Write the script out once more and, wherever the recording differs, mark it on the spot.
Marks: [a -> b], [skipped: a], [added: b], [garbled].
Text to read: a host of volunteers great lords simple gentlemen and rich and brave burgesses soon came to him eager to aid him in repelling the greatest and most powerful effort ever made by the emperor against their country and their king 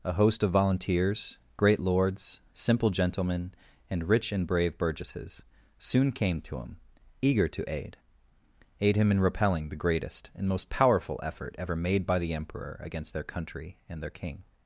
a host of volunteers great lords simple gentlemen and rich and brave burgesses soon came to him eager to aid [added: aid] him in repelling the greatest and most powerful effort ever made by the emperor against their country and their king